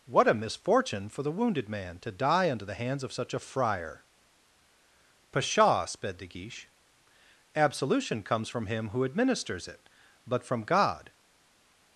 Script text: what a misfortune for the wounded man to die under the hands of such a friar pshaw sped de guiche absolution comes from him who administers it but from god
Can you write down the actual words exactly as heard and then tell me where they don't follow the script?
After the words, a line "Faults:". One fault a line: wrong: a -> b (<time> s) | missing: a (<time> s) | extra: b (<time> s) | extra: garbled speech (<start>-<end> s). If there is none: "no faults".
what a misfortune for the wounded man to die under the hands of such a friar pshaw sped de guiche absolution comes from him who administers it but from god
Faults:
no faults